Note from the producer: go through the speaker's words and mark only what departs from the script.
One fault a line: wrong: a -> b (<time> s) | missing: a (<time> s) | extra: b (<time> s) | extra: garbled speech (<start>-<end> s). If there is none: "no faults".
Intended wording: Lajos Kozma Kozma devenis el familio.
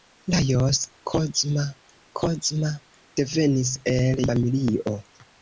no faults